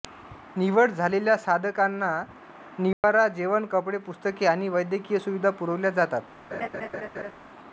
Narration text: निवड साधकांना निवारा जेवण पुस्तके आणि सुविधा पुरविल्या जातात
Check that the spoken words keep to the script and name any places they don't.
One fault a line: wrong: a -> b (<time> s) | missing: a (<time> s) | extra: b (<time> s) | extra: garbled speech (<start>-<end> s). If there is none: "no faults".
extra: झालेल्या (0.9 s)
extra: कपडे (3.7 s)
extra: वैद्यकीय (4.7 s)